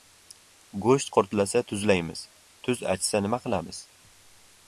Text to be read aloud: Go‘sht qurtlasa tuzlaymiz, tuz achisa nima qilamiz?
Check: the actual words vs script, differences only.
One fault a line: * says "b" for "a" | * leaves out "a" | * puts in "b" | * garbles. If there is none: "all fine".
all fine